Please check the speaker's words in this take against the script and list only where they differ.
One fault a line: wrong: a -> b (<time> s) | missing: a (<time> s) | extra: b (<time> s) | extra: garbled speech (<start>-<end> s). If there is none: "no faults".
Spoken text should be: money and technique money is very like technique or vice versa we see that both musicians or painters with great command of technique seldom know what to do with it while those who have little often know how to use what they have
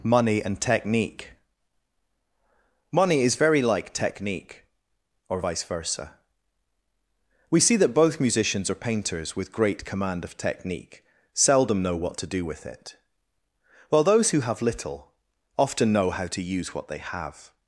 no faults